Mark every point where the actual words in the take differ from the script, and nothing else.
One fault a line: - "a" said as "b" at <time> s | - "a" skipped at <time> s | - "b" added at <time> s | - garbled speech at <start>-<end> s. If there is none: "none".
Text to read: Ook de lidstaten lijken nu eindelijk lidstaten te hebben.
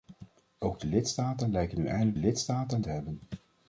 none